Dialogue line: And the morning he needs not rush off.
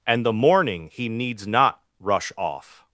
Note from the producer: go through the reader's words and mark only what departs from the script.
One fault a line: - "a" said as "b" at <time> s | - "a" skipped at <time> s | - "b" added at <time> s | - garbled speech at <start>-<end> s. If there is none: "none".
none